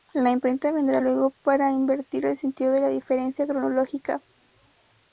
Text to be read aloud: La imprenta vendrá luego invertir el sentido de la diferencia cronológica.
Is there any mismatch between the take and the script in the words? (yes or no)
yes